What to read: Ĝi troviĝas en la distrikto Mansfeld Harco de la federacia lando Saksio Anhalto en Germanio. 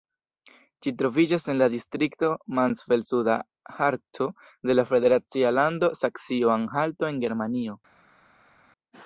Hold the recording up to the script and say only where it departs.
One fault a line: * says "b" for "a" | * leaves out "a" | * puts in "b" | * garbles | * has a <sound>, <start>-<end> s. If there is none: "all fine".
* puts in "Suda"